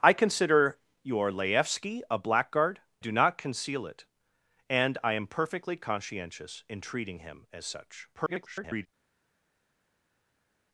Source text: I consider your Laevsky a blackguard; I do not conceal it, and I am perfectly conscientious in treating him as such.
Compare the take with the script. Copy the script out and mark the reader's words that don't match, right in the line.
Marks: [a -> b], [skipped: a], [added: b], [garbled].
I consider your Laevsky a blackguard; [skipped: I] do not conceal it, and I am perfectly conscientious in treating him as such. [garbled]